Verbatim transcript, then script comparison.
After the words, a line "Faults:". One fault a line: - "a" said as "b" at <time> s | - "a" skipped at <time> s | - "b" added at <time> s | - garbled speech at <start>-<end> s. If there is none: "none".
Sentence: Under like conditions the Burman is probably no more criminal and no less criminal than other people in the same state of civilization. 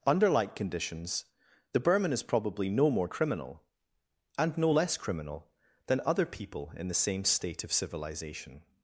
Under like conditions the Burman is probably no more criminal and no less criminal than other people in the same state of civilization.
Faults:
none